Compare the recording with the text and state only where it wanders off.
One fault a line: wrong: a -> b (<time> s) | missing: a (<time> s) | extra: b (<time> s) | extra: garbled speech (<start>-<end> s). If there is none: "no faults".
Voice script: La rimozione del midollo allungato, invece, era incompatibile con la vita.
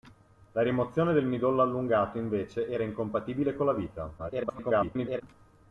extra: garbled speech (4.2-5.2 s)